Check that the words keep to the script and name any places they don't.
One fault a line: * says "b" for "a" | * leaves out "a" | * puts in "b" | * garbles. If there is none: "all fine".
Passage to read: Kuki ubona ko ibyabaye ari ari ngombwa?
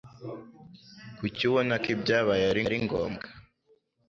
all fine